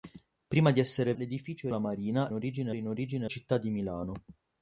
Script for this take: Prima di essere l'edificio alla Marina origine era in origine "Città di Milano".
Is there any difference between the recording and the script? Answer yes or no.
no